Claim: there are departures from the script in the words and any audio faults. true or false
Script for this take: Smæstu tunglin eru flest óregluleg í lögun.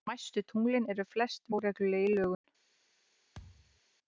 true